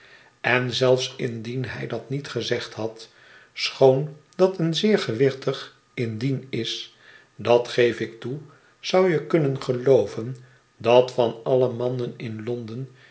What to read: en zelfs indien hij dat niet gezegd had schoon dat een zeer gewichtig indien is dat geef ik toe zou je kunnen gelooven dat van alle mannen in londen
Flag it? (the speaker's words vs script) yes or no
no